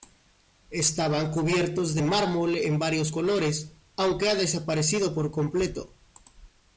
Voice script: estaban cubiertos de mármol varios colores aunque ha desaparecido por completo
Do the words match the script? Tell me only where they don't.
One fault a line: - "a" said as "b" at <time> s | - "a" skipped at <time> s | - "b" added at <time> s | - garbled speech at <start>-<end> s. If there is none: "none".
- "en" added at 2.5 s